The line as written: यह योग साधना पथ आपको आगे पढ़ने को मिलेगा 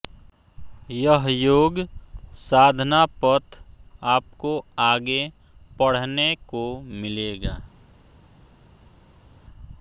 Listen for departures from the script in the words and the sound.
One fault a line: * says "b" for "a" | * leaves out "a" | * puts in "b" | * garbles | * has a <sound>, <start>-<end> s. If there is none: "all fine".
all fine